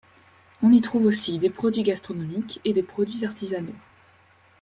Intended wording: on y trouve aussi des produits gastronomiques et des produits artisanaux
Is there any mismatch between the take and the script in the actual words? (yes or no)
no